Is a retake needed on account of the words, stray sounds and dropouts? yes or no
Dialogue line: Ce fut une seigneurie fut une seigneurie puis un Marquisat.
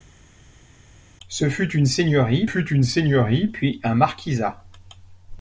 no